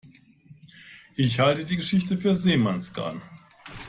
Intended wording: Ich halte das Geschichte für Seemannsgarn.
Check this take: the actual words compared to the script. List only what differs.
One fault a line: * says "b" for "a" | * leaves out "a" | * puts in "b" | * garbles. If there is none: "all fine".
* says "die" for "das"